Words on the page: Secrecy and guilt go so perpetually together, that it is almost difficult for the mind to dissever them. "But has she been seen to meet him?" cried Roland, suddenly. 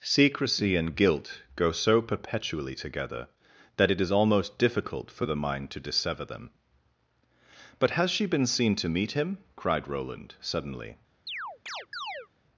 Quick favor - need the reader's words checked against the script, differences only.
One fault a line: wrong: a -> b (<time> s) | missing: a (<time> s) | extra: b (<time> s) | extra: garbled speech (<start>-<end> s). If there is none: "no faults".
no faults